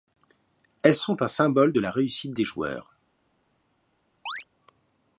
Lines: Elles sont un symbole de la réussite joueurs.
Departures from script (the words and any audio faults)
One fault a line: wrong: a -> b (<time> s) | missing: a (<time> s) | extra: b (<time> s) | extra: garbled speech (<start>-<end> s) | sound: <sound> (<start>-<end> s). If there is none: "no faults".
extra: des (2.3 s)
sound: chirp (4.3-4.4 s)